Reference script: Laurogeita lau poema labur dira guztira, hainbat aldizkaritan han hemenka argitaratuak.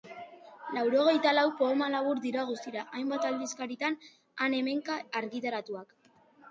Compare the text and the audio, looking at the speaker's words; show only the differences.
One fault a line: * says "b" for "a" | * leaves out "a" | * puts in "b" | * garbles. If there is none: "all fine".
all fine